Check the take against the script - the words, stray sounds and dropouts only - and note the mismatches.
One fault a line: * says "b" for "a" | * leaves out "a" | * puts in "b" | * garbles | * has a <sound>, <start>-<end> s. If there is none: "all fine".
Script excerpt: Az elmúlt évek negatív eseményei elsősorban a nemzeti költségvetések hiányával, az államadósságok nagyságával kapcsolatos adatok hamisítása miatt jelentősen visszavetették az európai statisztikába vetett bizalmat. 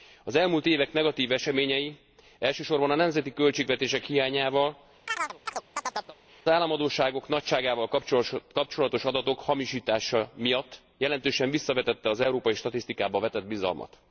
* leaves out "az"
* has a chirp, 5.1-6.2 s